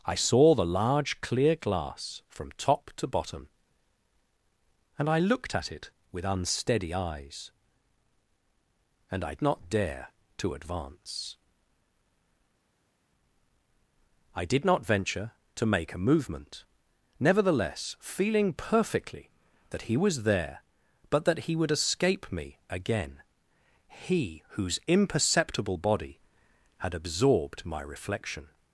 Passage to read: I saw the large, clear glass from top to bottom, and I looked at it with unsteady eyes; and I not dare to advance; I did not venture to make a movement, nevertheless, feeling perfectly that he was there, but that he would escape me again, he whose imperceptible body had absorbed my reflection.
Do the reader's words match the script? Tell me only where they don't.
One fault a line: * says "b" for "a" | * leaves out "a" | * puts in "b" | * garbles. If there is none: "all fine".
all fine